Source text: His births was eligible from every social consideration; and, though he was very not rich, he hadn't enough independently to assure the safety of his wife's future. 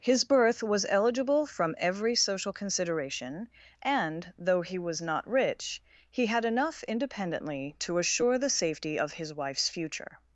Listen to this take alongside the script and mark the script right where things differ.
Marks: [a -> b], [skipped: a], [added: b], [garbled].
His [births -> birth] was eligible from every social consideration; and, though he was [skipped: very] not rich, he [hadn't -> had] enough independently to assure the safety of his wife's future.